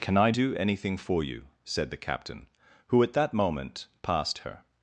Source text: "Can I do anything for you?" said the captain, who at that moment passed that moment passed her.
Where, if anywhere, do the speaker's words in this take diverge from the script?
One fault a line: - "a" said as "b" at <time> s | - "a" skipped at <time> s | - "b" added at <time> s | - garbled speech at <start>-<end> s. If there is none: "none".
- "that moment passed" skipped at 4.4 s